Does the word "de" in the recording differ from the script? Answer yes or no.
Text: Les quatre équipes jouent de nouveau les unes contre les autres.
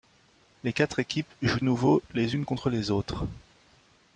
yes